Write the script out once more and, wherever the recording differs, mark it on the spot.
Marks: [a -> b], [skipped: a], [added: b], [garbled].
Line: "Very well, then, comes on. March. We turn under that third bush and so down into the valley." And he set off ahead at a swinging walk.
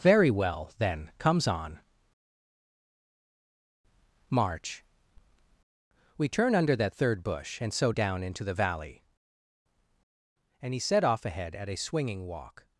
"Very well, then, comes on. March. We turn under that third bush and so down into the valley." And he set off ahead at a swinging walk.